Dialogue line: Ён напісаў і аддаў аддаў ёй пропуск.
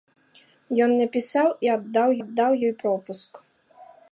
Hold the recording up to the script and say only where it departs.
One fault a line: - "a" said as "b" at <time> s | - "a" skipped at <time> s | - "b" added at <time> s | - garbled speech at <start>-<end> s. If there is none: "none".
none